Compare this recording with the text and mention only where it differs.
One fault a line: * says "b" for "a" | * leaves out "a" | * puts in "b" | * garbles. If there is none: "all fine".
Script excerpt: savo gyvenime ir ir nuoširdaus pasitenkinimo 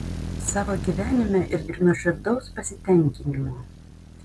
all fine